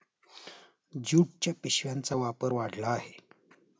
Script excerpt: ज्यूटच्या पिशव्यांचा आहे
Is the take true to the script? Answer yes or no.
no